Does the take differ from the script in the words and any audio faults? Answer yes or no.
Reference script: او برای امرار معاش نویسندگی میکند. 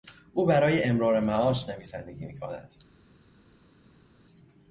no